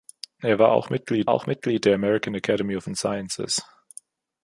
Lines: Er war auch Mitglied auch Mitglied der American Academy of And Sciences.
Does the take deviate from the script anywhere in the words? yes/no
no